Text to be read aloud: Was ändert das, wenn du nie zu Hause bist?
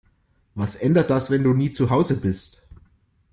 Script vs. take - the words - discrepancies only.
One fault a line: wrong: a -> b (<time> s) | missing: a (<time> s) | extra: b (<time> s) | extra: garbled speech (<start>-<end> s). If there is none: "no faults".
no faults